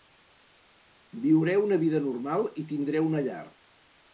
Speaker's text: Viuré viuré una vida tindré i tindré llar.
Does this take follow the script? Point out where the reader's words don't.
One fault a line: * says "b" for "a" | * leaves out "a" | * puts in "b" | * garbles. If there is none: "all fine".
* leaves out "viuré"
* says "normal" for "tindré"
* puts in "una"